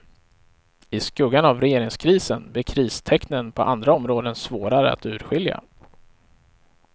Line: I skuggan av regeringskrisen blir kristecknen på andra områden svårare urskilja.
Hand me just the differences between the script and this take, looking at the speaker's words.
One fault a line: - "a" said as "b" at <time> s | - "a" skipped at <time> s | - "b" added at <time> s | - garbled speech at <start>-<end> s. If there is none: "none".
- "att" added at 4.9 s